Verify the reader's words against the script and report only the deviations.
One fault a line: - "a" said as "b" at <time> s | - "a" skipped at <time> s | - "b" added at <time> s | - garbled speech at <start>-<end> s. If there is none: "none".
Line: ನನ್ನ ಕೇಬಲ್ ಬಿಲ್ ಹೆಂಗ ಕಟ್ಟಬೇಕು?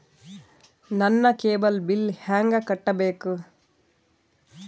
none